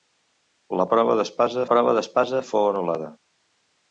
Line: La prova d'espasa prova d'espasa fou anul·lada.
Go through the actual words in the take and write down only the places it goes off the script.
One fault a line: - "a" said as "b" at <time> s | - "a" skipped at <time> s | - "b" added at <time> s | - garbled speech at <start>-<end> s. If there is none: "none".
none